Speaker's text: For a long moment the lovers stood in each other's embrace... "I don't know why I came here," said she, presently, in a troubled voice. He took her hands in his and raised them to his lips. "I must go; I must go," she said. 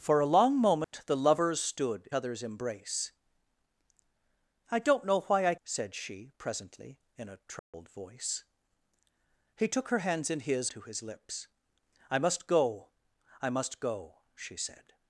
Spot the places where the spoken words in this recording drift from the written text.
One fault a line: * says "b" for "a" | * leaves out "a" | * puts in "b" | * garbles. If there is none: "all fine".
* leaves out "in each"
* leaves out "came here"
* leaves out "and raised them"